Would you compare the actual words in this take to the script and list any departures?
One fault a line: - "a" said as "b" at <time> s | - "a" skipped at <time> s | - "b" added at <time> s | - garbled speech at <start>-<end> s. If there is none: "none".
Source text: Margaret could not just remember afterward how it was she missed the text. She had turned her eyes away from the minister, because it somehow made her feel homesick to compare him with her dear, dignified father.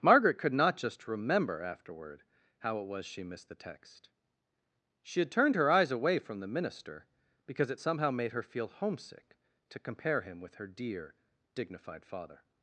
none